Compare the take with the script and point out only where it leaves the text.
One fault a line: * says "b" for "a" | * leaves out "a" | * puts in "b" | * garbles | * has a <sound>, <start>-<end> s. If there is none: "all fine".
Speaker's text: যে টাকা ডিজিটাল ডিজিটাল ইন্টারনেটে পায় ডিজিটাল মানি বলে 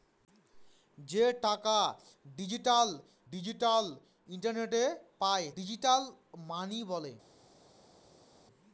all fine